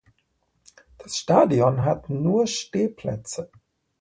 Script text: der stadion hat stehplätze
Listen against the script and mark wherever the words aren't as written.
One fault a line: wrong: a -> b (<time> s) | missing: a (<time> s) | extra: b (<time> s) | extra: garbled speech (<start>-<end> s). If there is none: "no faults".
wrong: der -> das (1.0 s)
extra: nur (2.1 s)